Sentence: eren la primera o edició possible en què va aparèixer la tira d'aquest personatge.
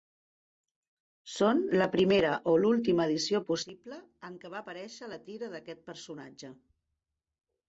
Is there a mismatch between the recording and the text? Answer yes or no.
yes